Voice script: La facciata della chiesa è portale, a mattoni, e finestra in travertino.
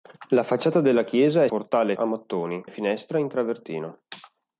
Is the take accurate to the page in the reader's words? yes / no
yes